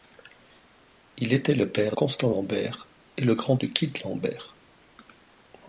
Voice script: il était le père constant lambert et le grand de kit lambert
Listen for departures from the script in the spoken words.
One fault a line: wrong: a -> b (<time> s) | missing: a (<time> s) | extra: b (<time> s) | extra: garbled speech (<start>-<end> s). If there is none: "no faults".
no faults